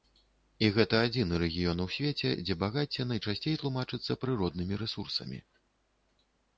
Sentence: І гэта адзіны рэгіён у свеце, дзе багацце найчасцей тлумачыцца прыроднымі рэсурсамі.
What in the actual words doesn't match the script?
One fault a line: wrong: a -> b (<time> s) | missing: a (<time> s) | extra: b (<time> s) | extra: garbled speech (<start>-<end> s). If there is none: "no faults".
no faults